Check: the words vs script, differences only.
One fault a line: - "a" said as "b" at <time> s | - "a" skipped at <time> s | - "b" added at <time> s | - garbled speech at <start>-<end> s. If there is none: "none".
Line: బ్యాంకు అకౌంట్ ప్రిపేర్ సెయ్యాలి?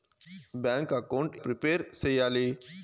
none